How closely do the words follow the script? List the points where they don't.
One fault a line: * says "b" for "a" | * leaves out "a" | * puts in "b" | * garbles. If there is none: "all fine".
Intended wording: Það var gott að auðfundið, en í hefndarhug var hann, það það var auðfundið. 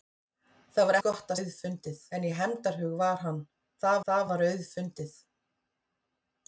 all fine